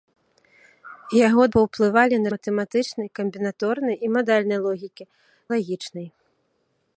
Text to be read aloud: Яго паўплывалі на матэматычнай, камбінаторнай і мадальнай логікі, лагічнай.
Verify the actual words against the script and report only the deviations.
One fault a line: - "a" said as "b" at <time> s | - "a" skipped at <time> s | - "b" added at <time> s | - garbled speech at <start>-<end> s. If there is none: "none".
none